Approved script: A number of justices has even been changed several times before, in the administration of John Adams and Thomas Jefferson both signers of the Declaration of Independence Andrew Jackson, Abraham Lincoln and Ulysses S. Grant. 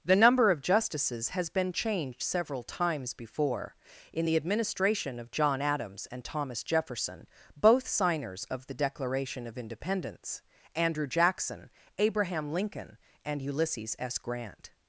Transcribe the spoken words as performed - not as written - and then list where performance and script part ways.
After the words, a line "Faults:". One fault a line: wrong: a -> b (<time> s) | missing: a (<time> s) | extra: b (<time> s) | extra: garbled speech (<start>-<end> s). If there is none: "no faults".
The number of justices has been changed several times before, in the administration of John Adams and Thomas Jefferson both signers of the Declaration of Independence Andrew Jackson, Abraham Lincoln and Ulysses S. Grant.
Faults:
wrong: A -> The (0.0 s)
missing: even (1.5 s)